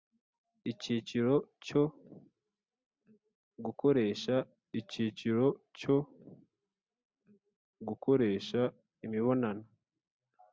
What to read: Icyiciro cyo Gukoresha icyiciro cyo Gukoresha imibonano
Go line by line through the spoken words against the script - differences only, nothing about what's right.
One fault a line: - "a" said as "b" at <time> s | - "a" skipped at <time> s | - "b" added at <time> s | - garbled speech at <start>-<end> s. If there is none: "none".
none